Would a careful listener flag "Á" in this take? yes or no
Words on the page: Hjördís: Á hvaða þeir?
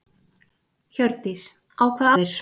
no